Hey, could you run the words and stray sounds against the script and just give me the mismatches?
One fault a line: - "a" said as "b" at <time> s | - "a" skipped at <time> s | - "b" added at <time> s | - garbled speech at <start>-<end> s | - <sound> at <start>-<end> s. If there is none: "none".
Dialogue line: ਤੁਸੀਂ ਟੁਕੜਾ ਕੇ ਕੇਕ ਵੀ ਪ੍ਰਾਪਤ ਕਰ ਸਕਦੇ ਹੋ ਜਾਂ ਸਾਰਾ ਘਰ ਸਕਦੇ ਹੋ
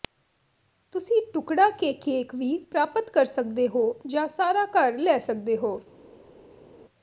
- "ਲੈ" added at 5.0 s